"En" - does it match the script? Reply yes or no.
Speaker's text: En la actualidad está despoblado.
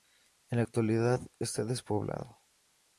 yes